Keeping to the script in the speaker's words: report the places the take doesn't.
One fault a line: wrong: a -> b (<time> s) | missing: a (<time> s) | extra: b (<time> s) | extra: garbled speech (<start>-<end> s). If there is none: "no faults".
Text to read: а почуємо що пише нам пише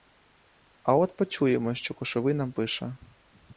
extra: от (0.9 s)
wrong: пише -> кошовий (1.9 s)